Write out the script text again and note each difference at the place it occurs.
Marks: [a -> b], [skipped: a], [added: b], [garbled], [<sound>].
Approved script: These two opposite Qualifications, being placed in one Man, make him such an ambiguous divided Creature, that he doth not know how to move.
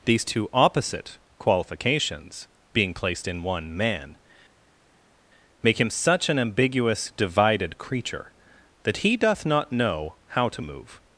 These two opposite Qualifications, being placed in one Man, make him such an ambiguous divided Creature, that he doth not know how to move.